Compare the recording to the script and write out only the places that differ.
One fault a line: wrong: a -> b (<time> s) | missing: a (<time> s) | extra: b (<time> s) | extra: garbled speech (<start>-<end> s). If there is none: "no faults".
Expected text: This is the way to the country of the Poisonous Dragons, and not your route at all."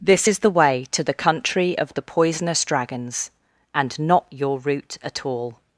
no faults